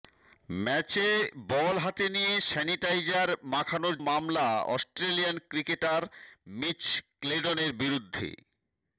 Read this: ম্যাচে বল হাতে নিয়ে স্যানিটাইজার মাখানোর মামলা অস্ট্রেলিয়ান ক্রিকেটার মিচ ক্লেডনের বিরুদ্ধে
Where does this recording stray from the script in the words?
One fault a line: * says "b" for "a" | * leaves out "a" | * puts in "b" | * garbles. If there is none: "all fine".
all fine